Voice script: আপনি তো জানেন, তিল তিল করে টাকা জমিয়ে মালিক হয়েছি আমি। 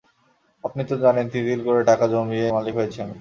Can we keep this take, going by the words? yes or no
yes